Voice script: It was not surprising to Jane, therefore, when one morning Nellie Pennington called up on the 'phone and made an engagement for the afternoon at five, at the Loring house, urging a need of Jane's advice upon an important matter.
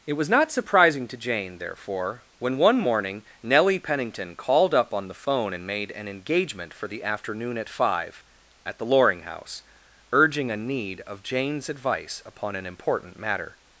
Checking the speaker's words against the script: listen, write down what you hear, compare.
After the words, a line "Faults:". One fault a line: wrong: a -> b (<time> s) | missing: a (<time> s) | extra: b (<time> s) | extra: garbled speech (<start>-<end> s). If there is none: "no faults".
It was not surprising to Jane, therefore, when one morning Nellie Pennington called up on the 'phone and made an engagement for the afternoon at five, at the Loring house, urging a need of Jane's advice upon an important matter.
Faults:
no faults